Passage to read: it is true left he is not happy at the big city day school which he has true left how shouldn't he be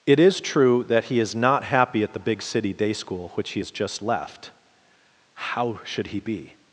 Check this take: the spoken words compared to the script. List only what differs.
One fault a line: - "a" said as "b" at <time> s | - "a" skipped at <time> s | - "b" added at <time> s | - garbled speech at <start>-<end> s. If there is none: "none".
- "left" said as "that" at 0.8 s
- "true" said as "just" at 3.7 s
- "shouldn't" said as "should" at 5.8 s